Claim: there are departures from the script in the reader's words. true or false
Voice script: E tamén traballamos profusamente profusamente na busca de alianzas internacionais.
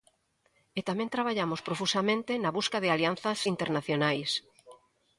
true